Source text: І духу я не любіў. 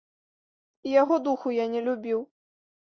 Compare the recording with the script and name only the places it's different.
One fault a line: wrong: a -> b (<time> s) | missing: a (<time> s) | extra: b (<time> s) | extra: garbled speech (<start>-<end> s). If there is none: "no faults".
extra: яго (1.0 s)